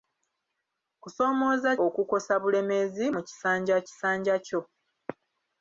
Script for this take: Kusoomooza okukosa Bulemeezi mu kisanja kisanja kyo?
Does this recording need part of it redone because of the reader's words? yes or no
no